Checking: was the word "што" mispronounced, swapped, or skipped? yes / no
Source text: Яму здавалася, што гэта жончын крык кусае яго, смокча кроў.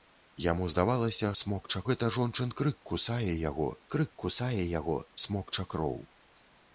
yes